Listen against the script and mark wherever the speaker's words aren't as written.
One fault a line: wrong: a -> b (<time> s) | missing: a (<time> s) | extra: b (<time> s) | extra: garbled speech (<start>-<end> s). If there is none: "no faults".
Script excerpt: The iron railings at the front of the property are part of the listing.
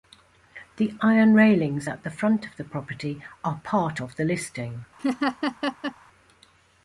no faults